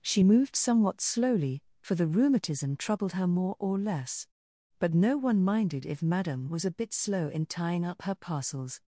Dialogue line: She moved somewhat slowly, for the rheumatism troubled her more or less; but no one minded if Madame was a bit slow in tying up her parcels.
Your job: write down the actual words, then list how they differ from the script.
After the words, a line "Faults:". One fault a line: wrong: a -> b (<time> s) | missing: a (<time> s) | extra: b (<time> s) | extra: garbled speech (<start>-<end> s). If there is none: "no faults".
She moved somewhat slowly, for the rheumatism troubled her more or less; but no one minded if Madame was a bit slow in tying up her parcels.
Faults:
no faults